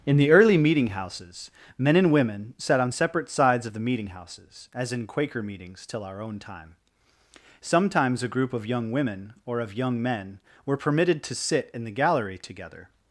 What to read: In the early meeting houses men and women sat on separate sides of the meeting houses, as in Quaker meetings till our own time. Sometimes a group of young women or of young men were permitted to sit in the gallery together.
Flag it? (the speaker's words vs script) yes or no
no